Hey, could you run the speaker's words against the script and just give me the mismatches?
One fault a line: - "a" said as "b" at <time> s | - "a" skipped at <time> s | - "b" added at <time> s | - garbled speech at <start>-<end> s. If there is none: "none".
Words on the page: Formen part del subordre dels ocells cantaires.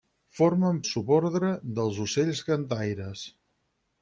- "part del" skipped at 0.8 s